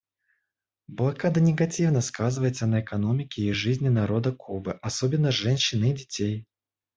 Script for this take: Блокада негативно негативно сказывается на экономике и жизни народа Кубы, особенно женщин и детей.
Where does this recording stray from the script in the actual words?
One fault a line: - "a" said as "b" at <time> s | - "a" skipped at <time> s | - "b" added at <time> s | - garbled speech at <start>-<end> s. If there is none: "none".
- "негативно" skipped at 2.0 s